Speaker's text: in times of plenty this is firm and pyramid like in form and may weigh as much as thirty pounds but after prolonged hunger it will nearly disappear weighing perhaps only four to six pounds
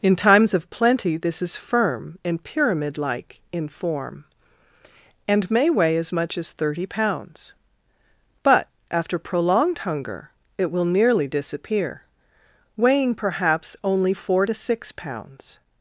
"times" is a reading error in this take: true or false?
false